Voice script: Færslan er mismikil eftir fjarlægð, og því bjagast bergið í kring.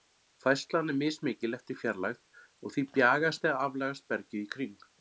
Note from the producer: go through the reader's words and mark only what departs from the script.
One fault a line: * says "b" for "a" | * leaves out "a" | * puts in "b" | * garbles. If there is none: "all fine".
* puts in "eða aflagast"